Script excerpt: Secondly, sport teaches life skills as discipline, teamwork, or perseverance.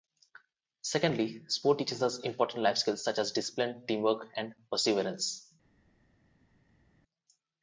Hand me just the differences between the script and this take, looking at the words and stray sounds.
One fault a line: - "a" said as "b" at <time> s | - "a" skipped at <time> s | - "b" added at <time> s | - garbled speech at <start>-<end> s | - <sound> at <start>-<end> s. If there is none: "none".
- "us important" added at 2.0 s
- "such" added at 3.0 s
- "or" said as "and" at 4.4 s